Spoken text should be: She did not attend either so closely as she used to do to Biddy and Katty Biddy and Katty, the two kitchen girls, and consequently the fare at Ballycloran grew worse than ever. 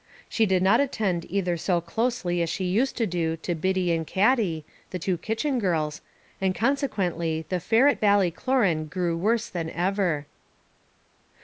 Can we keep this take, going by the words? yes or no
no